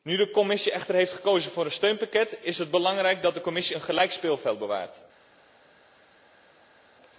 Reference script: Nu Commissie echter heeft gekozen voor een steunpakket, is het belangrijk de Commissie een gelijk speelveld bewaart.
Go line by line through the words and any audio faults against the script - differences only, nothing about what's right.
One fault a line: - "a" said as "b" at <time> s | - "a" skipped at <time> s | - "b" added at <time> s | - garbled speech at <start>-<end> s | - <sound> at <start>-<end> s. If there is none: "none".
- "de" added at 0.2 s
- "dat" added at 3.2 s